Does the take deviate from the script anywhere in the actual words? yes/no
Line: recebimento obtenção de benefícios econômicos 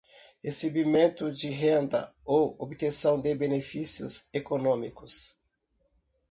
yes